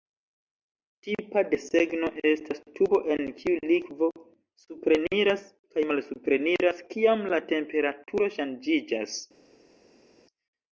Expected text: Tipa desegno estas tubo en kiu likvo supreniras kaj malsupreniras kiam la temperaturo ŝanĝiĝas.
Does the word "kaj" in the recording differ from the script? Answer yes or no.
no